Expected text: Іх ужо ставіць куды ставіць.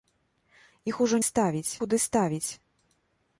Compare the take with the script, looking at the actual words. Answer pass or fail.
pass